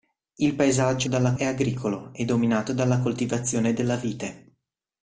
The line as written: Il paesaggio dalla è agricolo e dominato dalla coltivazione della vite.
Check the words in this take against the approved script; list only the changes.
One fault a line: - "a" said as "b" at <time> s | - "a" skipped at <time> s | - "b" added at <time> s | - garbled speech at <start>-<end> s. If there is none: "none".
none